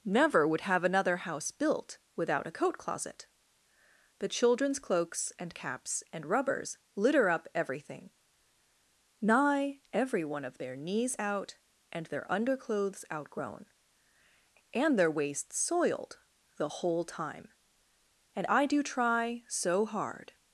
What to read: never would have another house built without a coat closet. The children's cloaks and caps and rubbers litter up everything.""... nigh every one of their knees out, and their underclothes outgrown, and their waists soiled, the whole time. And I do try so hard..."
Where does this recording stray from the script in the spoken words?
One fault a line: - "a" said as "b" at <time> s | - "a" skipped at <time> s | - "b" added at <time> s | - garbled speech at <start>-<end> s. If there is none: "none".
none